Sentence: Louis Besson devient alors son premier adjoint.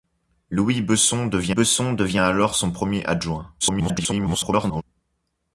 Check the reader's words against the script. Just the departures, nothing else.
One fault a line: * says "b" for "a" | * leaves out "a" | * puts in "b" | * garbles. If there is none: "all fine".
* puts in "Besson devient"
* garbles